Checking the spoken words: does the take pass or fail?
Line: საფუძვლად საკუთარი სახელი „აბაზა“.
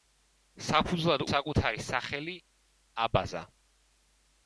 pass